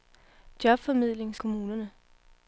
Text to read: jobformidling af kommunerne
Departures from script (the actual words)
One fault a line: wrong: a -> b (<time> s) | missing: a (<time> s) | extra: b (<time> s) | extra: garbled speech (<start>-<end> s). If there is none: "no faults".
no faults